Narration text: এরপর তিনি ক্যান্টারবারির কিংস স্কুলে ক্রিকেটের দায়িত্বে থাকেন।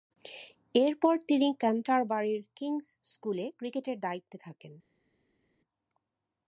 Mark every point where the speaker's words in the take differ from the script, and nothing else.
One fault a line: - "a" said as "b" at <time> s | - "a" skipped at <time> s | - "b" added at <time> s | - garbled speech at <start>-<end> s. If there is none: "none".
none